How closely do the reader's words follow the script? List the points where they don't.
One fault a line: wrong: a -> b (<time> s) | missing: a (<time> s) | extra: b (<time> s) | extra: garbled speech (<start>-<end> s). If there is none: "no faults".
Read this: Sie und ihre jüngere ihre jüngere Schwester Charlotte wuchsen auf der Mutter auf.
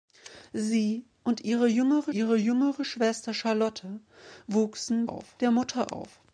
no faults